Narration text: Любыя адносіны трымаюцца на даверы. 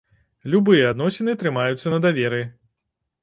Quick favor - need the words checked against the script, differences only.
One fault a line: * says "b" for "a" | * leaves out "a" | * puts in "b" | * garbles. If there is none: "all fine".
all fine